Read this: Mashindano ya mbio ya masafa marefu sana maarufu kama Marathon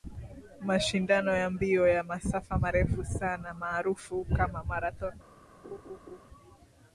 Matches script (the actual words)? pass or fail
pass